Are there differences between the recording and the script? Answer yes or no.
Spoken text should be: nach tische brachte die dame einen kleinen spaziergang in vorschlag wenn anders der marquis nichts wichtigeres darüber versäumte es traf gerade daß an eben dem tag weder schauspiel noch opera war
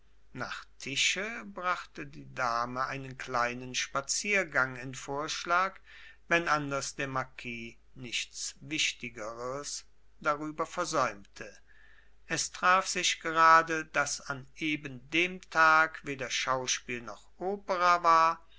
yes